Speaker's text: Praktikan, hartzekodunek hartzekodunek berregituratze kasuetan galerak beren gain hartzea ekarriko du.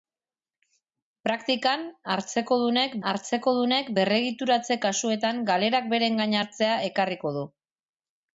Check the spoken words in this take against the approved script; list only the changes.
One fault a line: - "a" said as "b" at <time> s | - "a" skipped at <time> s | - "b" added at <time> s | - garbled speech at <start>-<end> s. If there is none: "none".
none